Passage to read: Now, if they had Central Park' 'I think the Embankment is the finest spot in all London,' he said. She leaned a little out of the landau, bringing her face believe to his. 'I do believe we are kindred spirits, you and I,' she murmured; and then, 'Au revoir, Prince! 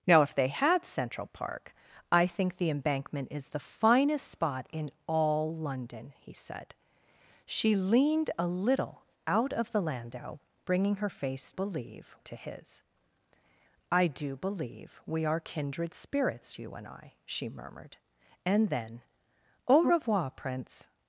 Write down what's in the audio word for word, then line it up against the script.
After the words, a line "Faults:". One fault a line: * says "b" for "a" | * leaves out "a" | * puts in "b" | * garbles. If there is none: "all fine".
Now, if they had Central Park' 'I think the Embankment is the finest spot in all London,' he said. She leaned a little out of the landau, bringing her face believe to his. 'I do believe we are kindred spirits, you and I,' she murmured; and then, 'Au revoir, Prince!
Faults:
all fine